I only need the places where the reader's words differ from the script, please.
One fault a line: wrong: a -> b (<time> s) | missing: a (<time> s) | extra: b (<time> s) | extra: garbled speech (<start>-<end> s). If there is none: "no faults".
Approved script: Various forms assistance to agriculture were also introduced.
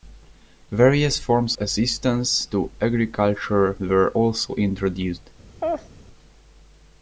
no faults